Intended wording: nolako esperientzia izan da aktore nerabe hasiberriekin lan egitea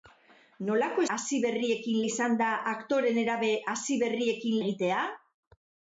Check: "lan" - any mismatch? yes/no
yes